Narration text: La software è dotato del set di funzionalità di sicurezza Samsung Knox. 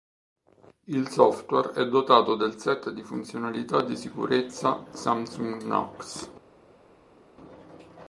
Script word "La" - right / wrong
wrong